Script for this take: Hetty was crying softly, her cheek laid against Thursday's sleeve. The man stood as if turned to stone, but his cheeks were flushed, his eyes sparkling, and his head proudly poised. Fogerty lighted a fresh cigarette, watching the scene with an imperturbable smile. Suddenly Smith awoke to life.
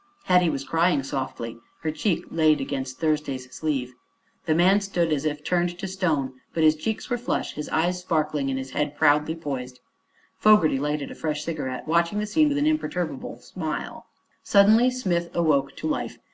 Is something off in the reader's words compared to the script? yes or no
no